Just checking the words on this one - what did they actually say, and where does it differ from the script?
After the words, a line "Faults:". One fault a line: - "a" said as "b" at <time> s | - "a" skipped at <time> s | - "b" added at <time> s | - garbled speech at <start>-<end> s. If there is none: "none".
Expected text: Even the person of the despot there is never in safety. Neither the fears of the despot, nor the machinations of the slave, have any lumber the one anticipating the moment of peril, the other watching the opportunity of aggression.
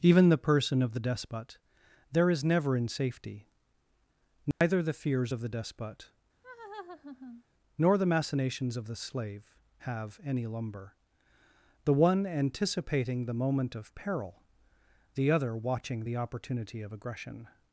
Even the person of the despot there is never in safety. Neither the fears of the despot, nor the machinations of the slave, have any lumber the one anticipating the moment of peril, the other watching the opportunity of aggression.
Faults:
none